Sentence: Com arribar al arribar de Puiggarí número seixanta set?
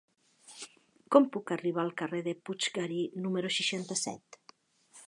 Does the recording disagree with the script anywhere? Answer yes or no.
yes